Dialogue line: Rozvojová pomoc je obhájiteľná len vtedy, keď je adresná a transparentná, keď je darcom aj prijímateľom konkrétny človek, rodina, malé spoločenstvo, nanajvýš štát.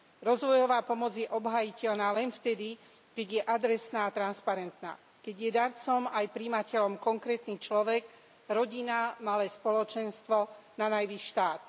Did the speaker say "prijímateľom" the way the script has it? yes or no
yes